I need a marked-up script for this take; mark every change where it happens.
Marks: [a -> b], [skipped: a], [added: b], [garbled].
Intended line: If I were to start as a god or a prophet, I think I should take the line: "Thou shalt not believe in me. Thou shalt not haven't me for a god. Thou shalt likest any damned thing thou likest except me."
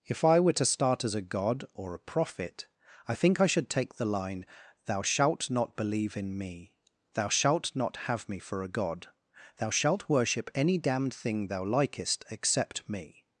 If I were to start as a god or a prophet, I think I should take the line: "Thou shalt not believe in me. Thou shalt not [haven't -> have] me for a god. Thou shalt [likest -> worship] any damned thing thou likest except me."